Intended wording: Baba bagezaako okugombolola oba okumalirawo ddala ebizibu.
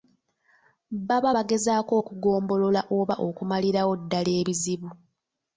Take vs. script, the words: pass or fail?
pass